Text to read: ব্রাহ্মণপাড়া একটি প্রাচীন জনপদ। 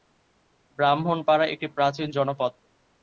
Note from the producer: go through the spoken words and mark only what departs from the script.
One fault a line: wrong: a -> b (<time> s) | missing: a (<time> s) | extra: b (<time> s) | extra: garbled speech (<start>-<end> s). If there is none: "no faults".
no faults